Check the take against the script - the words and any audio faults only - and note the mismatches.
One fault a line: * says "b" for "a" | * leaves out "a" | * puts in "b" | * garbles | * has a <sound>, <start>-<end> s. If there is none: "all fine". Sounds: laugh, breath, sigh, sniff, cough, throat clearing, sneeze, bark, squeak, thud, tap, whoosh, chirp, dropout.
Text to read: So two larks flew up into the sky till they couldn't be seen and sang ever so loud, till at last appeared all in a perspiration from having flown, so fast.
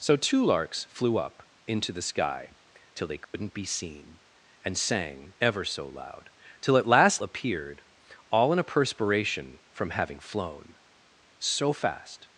* has a dropout, 3.2-3.3 s